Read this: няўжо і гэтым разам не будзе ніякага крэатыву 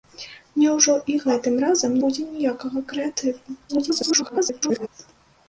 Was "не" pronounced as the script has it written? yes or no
no